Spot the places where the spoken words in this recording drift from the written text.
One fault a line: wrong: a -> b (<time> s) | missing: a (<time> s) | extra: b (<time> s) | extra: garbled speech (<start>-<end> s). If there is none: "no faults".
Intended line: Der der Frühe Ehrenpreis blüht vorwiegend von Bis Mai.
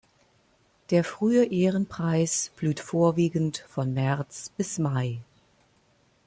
missing: der (1.0 s)
extra: März (3.9 s)